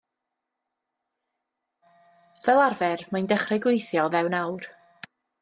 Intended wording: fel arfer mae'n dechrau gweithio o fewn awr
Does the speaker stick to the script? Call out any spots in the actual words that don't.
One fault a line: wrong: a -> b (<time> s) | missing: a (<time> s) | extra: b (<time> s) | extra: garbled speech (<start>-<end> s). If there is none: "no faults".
no faults